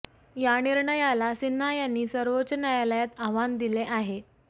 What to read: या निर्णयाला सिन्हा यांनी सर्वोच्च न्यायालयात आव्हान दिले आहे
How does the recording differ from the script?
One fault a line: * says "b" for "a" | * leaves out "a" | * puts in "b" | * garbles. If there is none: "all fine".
all fine